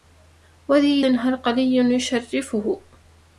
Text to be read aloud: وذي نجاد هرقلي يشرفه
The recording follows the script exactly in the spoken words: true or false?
false